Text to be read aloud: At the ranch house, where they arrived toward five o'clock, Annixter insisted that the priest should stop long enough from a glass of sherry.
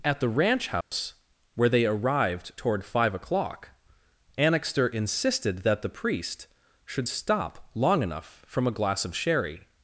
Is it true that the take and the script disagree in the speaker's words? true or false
false